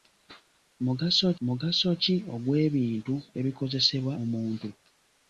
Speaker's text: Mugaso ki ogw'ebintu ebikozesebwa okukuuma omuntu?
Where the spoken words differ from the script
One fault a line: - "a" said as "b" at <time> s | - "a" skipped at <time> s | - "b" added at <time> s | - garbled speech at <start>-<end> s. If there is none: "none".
- "mugaso" added at 1.5 s
- "okukuuma" skipped at 4.1 s